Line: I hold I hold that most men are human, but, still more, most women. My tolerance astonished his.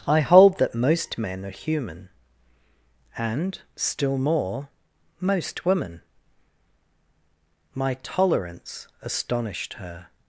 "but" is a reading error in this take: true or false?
true